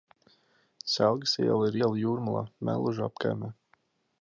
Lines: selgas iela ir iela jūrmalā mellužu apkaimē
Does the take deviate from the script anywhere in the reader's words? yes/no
no